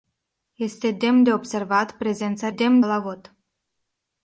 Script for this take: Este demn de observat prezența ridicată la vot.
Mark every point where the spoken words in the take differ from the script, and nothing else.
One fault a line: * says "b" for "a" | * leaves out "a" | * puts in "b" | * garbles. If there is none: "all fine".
* says "demn" for "ridicată"